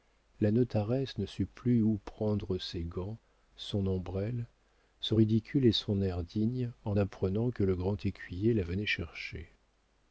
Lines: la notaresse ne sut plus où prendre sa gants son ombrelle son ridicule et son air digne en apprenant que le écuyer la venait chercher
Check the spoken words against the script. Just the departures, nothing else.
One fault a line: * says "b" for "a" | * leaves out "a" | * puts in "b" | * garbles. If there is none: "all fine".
* says "ses" for "sa"
* puts in "grand"